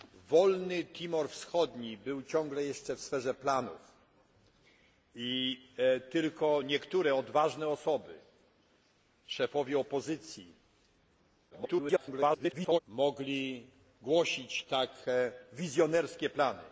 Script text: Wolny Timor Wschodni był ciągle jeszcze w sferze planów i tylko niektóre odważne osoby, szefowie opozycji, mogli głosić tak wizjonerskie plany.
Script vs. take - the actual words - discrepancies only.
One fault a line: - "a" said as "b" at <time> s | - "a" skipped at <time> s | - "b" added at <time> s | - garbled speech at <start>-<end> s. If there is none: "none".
- garbled speech at 11.5-12.8 s